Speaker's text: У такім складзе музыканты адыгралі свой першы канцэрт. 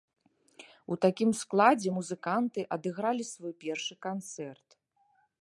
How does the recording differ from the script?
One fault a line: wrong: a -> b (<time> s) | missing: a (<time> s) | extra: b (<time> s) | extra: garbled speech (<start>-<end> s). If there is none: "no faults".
no faults